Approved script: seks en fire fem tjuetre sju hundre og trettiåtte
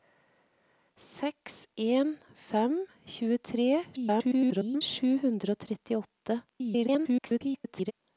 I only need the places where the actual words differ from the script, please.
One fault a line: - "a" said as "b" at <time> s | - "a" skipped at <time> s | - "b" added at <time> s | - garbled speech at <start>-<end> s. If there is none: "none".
- "fire" skipped at 2.1 s
- garbled speech at 4.0-4.8 s
- garbled speech at 6.5-7.9 s